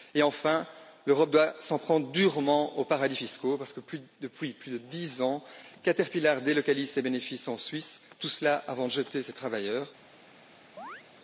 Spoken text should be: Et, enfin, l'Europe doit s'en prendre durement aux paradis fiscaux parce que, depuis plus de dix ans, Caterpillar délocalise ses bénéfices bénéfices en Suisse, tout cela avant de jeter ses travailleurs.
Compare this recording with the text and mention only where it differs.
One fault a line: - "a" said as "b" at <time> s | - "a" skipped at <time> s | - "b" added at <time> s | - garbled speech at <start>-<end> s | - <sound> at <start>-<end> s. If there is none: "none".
- "bénéfices" skipped at 7.5 s
- chirp at 10.8-11.0 s